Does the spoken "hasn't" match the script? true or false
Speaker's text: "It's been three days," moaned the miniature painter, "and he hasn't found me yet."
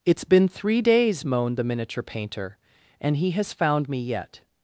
false